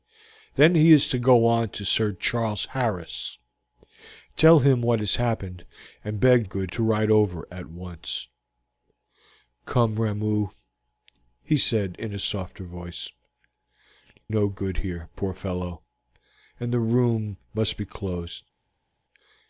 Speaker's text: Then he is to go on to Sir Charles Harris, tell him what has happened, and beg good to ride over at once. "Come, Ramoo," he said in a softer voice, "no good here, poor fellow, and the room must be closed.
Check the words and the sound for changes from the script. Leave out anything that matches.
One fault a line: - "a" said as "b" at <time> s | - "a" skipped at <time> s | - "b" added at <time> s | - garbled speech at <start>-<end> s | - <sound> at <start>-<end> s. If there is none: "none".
none